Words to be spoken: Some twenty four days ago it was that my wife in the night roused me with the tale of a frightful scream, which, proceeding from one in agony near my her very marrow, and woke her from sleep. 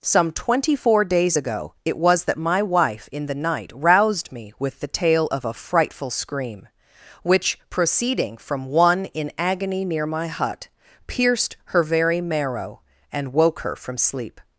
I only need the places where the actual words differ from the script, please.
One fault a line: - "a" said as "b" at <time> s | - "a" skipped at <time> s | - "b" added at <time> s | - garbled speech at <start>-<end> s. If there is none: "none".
- "hut pierced" added at 10.3 s